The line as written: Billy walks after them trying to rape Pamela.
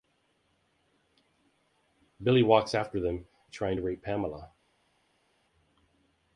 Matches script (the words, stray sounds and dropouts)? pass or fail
pass